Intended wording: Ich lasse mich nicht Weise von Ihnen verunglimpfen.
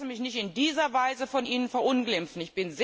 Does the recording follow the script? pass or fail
fail